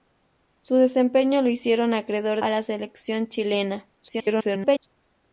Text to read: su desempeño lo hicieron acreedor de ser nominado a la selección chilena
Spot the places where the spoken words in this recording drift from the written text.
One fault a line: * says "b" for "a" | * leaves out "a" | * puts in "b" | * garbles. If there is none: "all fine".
* leaves out "de ser nominado"
* garbles